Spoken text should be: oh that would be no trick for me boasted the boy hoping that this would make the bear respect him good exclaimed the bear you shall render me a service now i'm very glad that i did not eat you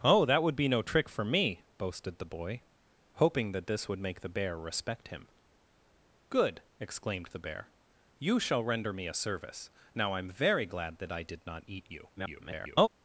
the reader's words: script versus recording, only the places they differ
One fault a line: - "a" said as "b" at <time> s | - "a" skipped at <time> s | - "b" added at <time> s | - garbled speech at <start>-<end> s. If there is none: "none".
- garbled speech at 12.2-12.9 s